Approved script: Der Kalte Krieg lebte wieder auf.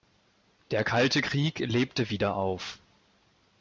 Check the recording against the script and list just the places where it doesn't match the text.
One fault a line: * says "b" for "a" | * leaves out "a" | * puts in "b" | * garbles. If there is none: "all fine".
all fine